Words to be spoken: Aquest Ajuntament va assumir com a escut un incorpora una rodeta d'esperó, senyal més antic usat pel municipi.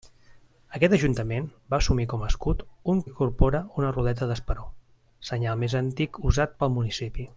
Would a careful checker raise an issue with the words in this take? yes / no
no